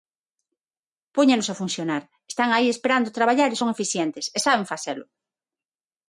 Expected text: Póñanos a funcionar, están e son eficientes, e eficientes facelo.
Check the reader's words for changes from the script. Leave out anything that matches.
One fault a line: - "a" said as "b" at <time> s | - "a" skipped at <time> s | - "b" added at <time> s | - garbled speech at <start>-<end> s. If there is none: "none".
- "aí esperando traballar" added at 2.5 s
- "eficientes" said as "saben" at 4.4 s